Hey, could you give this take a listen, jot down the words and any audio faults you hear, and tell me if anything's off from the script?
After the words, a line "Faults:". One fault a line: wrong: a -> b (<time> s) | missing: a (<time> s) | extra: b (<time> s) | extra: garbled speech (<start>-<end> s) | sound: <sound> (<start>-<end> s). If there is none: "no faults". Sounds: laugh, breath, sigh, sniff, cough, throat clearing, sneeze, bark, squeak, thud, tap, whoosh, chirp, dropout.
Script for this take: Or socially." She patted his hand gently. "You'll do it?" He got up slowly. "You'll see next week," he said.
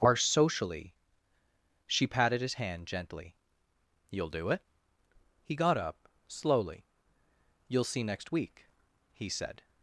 Are socially." She patted his hand gently. "You'll do it?" He got up slowly. "You'll see next week," he said.
Faults:
wrong: Or -> Are (0.0 s)